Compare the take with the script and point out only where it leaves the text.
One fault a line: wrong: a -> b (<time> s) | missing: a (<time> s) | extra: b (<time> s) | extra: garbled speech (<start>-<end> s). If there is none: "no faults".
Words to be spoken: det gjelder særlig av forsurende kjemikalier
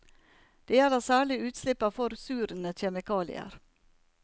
extra: utslipp (1.5 s)